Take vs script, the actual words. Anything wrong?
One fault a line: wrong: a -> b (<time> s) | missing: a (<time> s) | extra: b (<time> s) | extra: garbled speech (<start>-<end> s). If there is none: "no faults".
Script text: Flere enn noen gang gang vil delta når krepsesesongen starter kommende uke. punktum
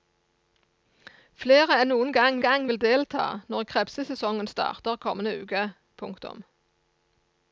no faults